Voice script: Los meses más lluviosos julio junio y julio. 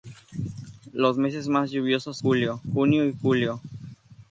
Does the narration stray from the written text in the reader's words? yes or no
no